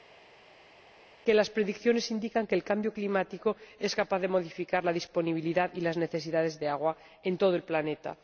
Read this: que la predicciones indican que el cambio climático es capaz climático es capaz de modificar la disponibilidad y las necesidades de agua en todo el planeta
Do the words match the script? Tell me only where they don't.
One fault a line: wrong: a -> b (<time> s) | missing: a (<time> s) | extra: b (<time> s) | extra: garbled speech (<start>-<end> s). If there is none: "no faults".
wrong: la -> las (1.3 s)
missing: climático es capaz (4.2 s)